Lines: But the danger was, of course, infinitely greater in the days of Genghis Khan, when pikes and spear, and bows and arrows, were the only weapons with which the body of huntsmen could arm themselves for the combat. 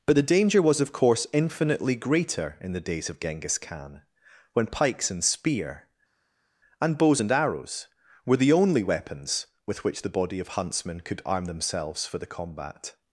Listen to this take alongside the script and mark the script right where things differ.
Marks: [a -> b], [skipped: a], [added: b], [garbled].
But the danger was, of course, infinitely greater in the days of Genghis Khan, when pikes and spear, and bows and arrows, were the only weapons with which the body of huntsmen could arm themselves for the combat.